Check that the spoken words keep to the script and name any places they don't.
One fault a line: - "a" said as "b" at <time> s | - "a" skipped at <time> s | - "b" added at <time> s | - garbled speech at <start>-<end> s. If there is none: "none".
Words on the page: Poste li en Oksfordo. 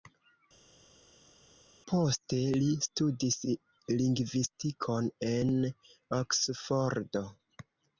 - "studis lingvistikon" added at 2.9 s